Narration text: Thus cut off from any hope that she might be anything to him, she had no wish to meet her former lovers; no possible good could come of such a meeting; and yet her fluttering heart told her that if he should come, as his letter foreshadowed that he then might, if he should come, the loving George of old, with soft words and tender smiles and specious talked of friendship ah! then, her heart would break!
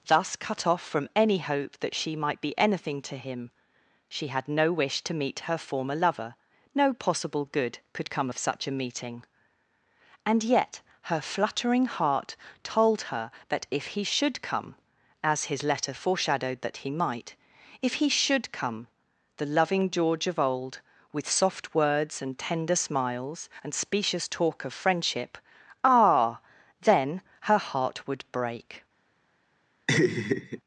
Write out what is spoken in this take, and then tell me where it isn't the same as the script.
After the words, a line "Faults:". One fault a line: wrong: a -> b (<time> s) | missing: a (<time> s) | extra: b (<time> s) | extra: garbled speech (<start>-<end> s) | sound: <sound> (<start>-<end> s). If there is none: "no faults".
Thus cut off from any hope that she might be anything to him, she had no wish to meet her former lover; no possible good could come of such a meeting; and yet her fluttering heart told her that if he should come, as his letter foreshadowed that he might, if he should come, the loving George of old, with soft words and tender smiles and specious talk of friendship ah! then, her heart would break!
Faults:
wrong: lovers -> lover (6.0 s)
missing: then (16.9 s)
wrong: talked -> talk (24.3 s)
sound: laugh (29.9-30.6 s)